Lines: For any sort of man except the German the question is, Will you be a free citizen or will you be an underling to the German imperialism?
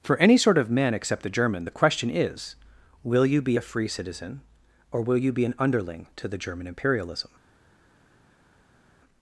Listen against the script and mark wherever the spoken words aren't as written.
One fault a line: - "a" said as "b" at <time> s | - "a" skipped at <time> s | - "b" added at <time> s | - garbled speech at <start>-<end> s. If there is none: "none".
none